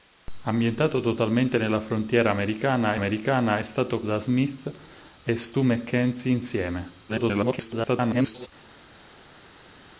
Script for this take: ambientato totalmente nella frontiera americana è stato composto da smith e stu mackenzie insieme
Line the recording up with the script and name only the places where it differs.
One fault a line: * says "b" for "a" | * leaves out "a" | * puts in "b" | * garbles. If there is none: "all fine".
* puts in "americana"
* leaves out "composto"
* garbles